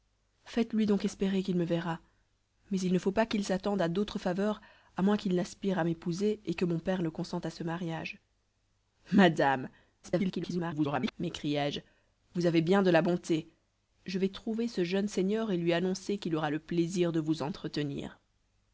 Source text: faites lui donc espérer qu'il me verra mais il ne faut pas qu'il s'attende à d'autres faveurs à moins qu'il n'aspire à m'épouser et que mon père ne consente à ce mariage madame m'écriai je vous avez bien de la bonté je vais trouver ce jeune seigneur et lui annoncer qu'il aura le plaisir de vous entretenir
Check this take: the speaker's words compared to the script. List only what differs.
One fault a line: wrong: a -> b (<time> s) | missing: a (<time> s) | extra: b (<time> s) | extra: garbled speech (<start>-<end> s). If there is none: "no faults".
extra: garbled speech (10.0-11.1 s)